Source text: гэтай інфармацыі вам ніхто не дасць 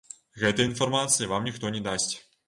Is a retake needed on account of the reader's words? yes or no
no